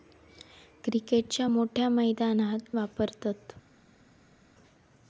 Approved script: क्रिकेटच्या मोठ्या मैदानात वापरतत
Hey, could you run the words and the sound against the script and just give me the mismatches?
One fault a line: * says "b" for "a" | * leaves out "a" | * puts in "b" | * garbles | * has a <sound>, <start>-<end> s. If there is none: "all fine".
all fine